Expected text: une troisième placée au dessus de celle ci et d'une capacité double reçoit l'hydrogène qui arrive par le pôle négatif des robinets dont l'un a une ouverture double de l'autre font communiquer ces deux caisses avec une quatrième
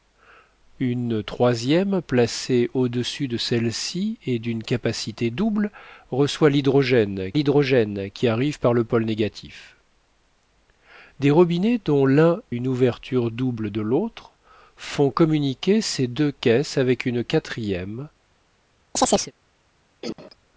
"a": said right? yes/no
no